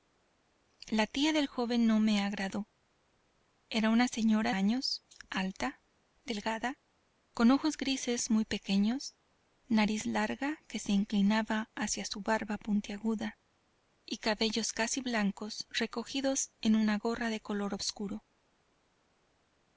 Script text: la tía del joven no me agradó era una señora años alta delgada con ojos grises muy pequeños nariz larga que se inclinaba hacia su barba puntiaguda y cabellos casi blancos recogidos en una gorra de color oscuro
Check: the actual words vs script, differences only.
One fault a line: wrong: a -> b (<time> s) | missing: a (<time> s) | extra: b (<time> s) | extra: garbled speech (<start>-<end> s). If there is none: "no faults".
no faults